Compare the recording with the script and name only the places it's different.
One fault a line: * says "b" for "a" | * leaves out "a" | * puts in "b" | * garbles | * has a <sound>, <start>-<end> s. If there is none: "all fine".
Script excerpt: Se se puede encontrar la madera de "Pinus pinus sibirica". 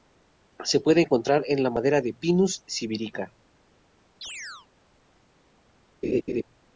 * leaves out "se"
* puts in "en"
* leaves out "pinus"
* has a chirp, 4.2-4.7 s
* has a laugh, 6.0-6.4 s